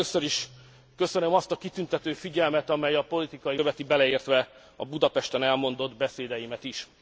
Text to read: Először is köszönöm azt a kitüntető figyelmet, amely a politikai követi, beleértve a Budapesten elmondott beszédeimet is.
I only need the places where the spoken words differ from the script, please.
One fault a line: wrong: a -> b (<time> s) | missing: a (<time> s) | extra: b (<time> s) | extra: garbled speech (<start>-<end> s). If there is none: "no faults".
no faults